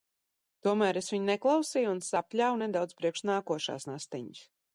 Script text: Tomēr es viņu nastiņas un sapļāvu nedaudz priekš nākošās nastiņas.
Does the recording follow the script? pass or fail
fail